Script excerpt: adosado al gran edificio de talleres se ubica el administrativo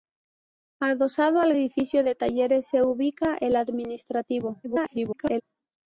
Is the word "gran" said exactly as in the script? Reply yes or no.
no